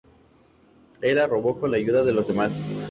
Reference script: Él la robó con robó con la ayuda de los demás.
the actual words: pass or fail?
fail